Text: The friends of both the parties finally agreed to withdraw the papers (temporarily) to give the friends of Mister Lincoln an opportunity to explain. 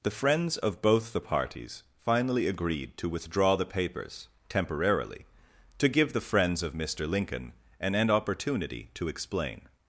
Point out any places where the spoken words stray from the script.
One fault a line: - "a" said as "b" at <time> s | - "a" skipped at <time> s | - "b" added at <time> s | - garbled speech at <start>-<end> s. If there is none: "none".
- "an" added at 7.9 s